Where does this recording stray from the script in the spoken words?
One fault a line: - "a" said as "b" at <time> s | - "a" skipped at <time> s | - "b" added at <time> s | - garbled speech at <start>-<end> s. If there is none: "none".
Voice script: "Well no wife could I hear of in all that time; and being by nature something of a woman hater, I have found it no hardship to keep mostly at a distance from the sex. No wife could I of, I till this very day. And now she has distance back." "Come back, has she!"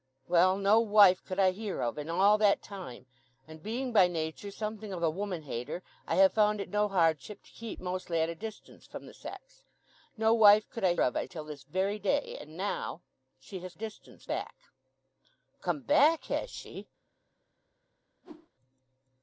none